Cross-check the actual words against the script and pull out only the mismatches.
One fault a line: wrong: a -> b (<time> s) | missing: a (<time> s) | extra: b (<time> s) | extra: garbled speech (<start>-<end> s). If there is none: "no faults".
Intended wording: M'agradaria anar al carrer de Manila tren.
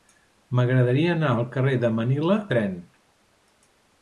no faults